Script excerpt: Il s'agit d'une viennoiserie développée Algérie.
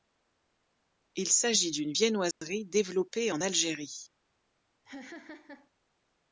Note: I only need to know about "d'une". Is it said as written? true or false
true